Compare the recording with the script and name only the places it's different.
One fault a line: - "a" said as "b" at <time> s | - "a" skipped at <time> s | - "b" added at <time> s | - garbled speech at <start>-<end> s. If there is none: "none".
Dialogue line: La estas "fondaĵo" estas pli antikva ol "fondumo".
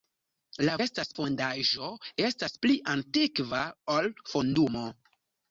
none